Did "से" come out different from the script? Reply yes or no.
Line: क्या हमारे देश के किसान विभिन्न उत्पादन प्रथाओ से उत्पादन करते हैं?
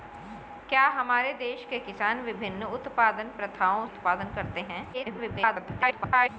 yes